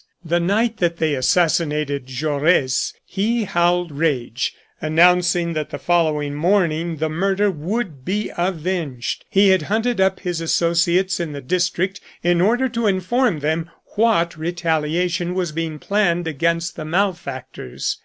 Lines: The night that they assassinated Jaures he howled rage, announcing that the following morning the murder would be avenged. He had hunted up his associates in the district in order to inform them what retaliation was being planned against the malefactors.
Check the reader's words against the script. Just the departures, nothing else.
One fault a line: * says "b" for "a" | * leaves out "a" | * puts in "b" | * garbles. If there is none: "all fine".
all fine